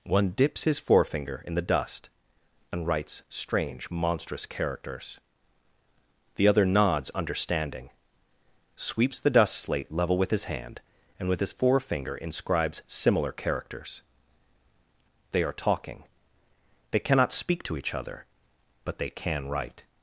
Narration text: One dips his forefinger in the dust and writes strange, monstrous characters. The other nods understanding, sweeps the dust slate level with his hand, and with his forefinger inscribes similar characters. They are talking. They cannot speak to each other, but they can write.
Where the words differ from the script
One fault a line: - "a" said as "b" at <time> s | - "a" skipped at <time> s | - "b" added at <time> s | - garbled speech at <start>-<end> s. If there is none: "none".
none